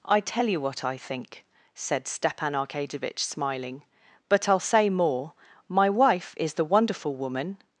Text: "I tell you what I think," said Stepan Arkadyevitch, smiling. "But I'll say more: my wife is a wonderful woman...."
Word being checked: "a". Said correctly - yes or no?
no